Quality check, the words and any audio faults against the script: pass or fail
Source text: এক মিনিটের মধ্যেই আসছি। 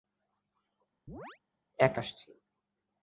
fail